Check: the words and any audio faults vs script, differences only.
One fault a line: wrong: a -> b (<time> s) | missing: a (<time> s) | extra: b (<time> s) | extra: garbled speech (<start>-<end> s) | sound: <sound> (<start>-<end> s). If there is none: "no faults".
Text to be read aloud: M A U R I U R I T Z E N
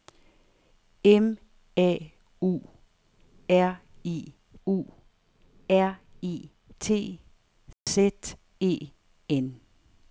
sound: dropout (7.7-7.9 s)